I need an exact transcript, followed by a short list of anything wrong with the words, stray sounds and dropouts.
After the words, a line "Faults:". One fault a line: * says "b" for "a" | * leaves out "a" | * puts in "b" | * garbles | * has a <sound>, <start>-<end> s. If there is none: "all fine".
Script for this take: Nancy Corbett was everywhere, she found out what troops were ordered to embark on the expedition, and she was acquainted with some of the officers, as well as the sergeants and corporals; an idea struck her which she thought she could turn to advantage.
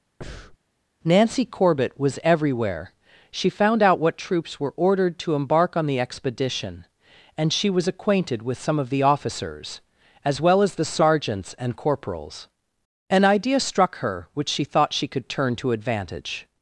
Nancy Corbett was everywhere, she found out what troops were ordered to embark on the expedition, and she was acquainted with some of the officers, as well as the sergeants and corporals; an idea struck her which she thought she could turn to advantage.
Faults:
* has a breath, 0.2-0.6 s